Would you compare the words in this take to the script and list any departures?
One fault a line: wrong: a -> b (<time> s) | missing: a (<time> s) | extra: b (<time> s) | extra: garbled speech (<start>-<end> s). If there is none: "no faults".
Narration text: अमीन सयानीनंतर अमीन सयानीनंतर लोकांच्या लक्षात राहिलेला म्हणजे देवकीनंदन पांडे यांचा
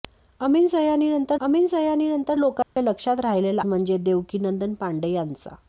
no faults